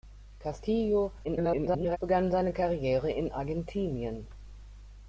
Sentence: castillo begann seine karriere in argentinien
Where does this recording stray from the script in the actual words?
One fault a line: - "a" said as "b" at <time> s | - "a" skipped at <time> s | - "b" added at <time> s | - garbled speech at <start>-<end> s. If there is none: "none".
- garbled speech at 1.2-2.0 s